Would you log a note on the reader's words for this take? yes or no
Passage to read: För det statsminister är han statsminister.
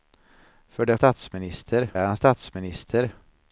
no